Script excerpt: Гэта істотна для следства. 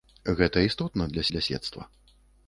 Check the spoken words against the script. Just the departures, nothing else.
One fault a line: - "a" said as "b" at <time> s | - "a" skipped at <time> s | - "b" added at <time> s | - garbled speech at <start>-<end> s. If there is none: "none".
- "для" added at 1.3 s